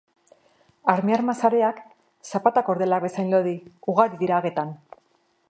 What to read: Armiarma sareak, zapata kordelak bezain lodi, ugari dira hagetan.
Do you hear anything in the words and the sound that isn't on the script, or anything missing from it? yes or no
no